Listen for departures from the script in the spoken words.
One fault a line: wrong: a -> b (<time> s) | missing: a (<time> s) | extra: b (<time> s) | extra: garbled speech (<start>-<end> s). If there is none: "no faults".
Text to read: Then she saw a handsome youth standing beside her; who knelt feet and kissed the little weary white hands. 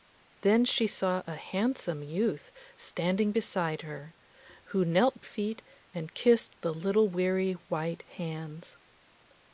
no faults